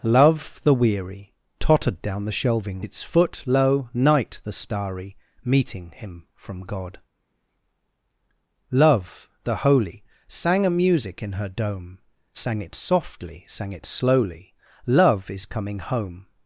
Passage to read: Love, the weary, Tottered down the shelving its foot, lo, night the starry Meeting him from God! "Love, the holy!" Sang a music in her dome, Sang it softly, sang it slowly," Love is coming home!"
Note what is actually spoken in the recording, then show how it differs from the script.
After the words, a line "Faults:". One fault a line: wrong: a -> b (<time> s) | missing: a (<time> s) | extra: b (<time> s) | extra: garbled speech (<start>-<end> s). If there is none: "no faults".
Love, the weary, Tottered down the shelving its foot, lo, night the starry Meeting him from God! "Love, the holy!" Sang a music in her dome, Sang it softly, sang it slowly," Love is coming home!"
Faults:
no faults